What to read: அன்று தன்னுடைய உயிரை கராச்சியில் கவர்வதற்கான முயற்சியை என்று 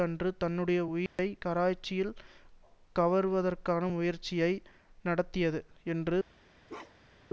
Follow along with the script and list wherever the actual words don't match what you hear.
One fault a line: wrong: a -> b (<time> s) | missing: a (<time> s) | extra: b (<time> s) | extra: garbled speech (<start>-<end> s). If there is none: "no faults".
extra: நடத்தியது (5.0 s)